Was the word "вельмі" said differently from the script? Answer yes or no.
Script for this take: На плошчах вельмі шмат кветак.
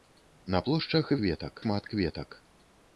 yes